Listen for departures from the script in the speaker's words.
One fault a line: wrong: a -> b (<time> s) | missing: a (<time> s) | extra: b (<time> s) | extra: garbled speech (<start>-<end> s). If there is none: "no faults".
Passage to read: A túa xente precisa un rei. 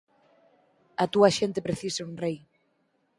no faults